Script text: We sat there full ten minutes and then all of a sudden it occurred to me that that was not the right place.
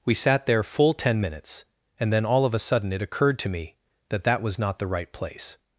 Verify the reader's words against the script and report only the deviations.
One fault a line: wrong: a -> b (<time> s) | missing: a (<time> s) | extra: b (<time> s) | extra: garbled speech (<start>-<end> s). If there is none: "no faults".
no faults